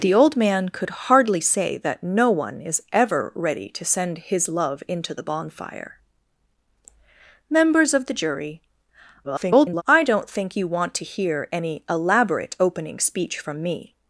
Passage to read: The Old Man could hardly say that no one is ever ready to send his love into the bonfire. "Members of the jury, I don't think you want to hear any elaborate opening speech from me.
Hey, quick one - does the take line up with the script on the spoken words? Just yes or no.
no